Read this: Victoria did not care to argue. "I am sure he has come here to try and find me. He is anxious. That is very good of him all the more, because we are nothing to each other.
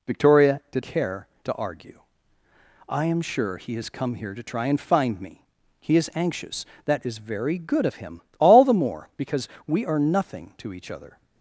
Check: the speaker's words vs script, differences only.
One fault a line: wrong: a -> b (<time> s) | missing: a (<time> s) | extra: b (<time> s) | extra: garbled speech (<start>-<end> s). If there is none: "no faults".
missing: not (0.8 s)